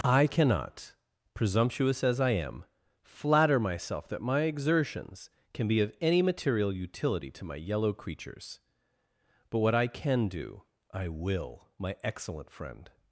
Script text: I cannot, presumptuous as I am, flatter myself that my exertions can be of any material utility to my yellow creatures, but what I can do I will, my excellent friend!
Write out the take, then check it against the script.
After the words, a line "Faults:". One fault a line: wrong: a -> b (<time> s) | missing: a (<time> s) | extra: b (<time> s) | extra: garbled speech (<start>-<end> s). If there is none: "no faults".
I cannot, presumptuous as I am, flatter myself that my exertions can be of any material utility to my yellow creatures, but what I can do I will, my excellent friend!
Faults:
no faults